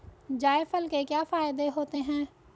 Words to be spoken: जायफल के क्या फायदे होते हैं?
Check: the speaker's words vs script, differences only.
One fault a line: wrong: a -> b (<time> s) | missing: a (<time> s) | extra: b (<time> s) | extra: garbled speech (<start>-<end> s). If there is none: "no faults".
no faults